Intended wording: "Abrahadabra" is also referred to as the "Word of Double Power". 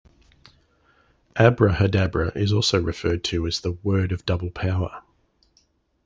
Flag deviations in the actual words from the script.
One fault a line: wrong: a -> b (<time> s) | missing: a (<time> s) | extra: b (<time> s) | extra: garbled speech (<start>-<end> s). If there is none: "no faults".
no faults